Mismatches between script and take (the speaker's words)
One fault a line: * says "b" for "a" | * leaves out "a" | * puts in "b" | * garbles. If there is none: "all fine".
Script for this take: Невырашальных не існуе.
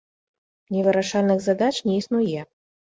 * puts in "задач"